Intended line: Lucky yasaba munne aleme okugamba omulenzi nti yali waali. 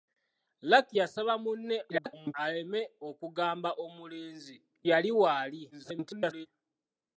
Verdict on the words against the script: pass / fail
fail